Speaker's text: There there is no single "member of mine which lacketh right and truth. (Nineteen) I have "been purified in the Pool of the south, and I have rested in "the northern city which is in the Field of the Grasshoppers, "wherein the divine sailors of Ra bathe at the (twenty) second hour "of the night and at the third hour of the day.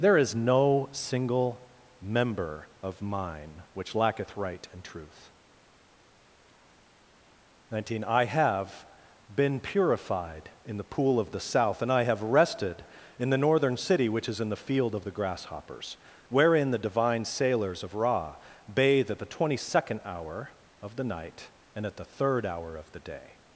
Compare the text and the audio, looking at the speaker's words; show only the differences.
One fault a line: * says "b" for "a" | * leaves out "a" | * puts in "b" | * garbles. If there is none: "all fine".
* leaves out "there"